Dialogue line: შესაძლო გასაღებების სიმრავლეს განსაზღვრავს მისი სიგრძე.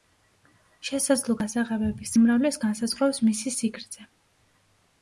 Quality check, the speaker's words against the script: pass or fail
pass